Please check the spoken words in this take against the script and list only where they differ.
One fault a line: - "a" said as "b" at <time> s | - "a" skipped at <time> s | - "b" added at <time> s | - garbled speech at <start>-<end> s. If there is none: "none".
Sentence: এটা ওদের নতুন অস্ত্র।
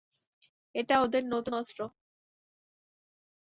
none